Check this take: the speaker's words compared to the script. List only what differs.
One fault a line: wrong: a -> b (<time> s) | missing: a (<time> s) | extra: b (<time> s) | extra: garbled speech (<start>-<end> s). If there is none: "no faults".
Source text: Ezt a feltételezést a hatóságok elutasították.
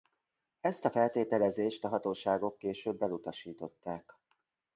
extra: később (2.6 s)